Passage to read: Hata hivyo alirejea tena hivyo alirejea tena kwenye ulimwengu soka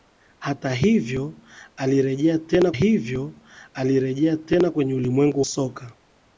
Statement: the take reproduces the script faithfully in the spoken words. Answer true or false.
true